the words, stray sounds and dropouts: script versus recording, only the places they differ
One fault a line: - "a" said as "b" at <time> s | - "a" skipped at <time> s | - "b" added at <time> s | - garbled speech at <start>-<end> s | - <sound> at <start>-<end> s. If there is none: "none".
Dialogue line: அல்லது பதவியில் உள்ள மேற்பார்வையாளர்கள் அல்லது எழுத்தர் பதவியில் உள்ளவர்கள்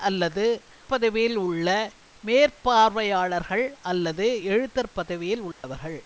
- dropout at 5.5-5.6 s